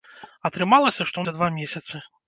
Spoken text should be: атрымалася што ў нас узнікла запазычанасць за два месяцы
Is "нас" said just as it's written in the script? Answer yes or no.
no